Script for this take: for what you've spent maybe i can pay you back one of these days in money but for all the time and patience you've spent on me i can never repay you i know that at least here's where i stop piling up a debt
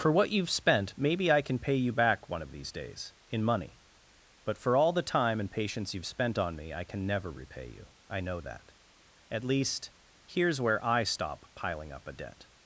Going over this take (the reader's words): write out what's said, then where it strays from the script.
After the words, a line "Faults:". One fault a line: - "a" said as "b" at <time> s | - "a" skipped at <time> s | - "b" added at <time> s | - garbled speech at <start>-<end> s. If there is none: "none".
for what you've spent maybe i can pay you back one of these days in money but for all the time and patience you've spent on me i can never repay you i know that at least here's where i stop piling up a debt
Faults:
none